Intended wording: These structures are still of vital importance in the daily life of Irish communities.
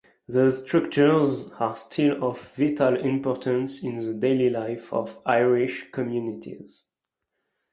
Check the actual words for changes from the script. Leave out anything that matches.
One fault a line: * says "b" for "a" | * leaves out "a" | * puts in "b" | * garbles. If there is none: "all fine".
all fine